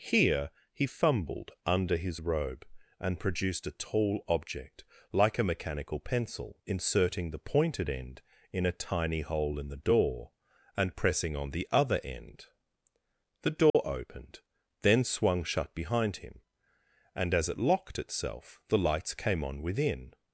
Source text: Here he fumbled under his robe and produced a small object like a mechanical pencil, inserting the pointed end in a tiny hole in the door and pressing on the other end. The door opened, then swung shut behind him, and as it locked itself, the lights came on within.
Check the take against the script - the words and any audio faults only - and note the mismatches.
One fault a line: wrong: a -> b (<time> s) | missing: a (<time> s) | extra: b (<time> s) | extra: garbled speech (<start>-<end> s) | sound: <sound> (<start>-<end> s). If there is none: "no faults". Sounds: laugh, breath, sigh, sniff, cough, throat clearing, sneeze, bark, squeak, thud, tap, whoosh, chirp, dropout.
wrong: small -> tall (3.8 s)
sound: dropout (13.7-13.7 s)